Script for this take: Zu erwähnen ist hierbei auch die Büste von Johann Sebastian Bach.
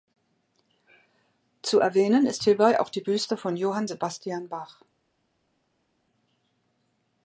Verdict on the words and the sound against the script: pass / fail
pass